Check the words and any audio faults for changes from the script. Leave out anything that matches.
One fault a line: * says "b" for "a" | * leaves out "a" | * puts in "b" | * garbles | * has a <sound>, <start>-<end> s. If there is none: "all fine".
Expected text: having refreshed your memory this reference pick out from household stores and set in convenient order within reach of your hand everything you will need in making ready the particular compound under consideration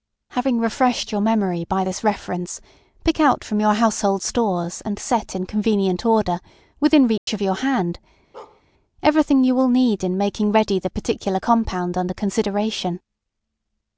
* puts in "by"
* puts in "your"
* has a dropout, 7.2-7.3 s
* has a bark, 8.3-8.6 s